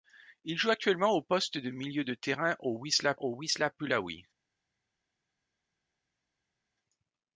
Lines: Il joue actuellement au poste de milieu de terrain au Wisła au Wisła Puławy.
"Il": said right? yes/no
yes